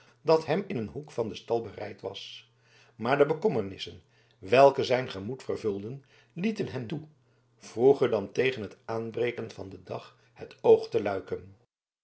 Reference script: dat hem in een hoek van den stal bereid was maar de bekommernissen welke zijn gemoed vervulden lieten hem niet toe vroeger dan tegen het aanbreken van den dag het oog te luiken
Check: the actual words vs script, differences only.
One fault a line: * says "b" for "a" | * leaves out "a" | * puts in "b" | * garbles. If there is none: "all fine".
* leaves out "niet"